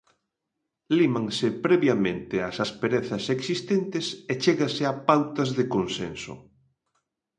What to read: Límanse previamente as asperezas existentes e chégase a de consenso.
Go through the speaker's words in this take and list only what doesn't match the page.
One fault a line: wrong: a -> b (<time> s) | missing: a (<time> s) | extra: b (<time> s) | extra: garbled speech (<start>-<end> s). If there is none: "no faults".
extra: pautas (5.1 s)